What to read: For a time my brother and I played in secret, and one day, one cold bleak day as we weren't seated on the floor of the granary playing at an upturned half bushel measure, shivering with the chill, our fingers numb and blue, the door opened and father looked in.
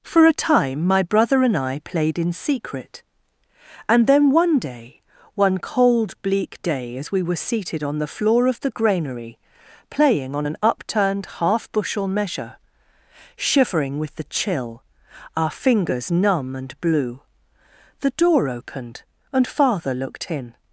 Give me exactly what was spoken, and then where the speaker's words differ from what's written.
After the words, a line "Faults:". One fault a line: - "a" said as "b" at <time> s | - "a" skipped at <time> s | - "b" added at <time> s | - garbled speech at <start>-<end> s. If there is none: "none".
For a time my brother and I played in secret, and then one day, one cold bleak day as we were seated on the floor of the granary playing on an upturned half bushel measure, shivering with the chill, our fingers numb and blue, the door opened and father looked in.
Faults:
- "then" added at 4.1 s
- "weren't" said as "were" at 7.2 s
- "at" said as "on" at 10.3 s